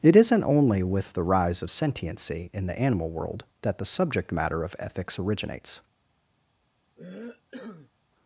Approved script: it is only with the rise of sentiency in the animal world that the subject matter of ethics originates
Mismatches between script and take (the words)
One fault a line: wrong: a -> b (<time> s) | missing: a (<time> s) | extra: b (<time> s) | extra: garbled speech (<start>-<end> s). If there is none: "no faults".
wrong: is -> isn't (0.1 s)